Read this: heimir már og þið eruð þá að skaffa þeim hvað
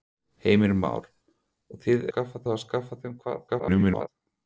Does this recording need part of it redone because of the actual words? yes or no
yes